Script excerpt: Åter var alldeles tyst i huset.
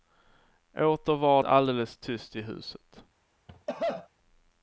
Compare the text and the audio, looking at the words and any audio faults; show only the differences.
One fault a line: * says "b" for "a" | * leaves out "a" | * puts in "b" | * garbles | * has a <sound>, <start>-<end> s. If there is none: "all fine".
* has a cough, 3.5-4.1 s